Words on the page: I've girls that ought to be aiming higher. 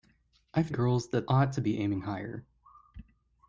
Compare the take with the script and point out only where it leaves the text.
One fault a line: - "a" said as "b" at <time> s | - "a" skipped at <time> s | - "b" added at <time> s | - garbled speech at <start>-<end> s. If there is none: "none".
none